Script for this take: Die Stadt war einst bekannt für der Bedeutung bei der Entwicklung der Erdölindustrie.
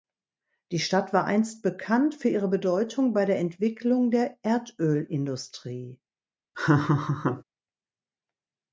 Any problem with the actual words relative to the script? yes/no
yes